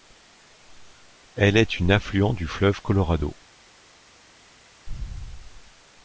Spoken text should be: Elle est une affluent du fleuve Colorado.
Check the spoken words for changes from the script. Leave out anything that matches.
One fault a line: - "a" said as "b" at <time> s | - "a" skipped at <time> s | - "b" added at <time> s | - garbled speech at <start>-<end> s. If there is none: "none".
none